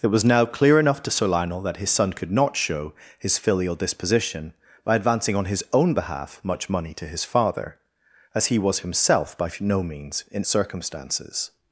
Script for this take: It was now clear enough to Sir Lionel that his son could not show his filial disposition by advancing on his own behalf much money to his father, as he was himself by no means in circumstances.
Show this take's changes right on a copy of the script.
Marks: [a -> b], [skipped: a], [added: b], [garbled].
It was now clear enough to Sir Lionel that his son could not show his filial disposition by advancing on his own behalf much money to his father, as he was himself by no means in circumstances.